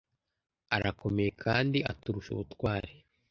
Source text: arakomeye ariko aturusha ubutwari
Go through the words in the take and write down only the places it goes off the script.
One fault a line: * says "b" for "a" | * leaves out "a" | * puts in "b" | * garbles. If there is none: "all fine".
* says "kandi" for "ariko"